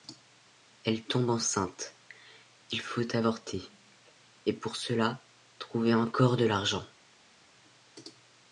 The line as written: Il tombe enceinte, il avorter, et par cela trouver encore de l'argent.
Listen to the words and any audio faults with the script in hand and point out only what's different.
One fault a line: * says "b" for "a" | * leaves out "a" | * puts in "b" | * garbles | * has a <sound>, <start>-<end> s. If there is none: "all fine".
* says "Elle" for "Il"
* puts in "faut"
* says "pour" for "par"